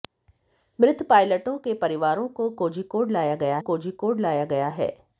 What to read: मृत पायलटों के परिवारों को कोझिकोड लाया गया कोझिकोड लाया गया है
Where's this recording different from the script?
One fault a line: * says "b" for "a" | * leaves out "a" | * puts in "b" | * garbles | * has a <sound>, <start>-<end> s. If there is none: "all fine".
all fine